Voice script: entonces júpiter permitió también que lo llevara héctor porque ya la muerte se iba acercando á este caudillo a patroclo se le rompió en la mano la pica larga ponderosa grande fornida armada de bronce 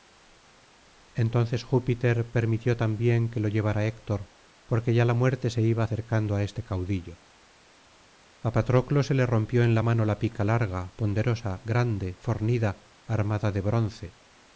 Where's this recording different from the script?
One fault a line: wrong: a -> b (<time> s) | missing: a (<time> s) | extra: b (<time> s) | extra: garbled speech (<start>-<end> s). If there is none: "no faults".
no faults